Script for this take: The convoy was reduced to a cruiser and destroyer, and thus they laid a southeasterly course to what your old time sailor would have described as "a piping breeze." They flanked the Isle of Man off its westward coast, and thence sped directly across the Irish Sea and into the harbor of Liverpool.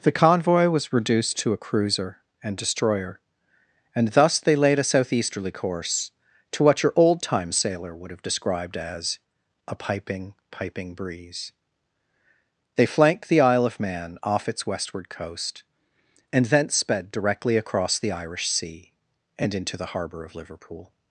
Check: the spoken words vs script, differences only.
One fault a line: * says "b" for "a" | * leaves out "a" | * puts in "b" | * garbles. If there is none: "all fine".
* puts in "piping"